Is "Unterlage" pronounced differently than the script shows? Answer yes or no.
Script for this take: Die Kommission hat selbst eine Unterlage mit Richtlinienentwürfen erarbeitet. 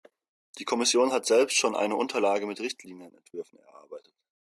no